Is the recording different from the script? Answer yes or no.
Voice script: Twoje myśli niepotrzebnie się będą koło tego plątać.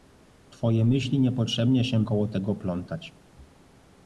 yes